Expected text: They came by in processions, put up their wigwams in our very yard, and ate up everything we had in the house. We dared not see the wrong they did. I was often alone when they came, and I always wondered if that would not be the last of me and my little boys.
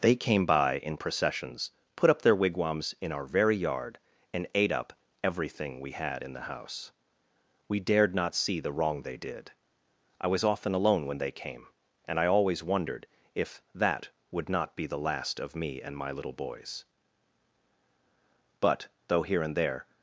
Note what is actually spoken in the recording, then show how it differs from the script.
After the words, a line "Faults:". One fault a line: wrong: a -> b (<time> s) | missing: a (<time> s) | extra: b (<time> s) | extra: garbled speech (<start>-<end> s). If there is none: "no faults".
They came by in processions, put up their wigwams in our very yard, and ate up everything we had in the house. We dared not see the wrong they did. I was often alone when they came, and I always wondered if that would not be the last of me and my little boys. "But, though here and there
Faults:
extra: But though here and there (18.6 s)